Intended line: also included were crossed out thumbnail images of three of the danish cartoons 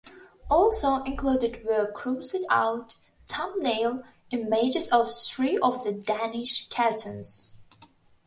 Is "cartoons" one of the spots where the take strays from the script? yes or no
no